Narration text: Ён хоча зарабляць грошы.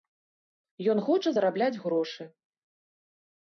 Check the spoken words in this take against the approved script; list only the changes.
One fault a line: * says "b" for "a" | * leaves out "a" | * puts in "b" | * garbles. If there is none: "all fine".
all fine